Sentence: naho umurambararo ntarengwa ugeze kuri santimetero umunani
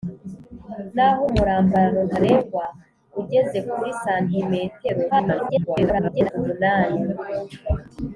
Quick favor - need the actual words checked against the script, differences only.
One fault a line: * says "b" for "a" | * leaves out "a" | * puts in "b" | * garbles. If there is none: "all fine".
* garbles